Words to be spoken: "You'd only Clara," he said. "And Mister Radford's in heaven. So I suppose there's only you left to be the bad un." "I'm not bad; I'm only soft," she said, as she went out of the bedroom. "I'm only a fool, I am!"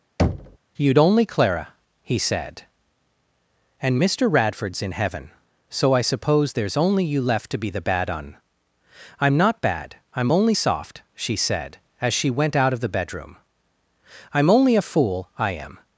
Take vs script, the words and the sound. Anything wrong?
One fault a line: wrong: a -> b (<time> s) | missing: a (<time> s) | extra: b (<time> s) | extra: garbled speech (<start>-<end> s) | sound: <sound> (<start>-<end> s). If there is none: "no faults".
sound: thud (0.2-0.6 s)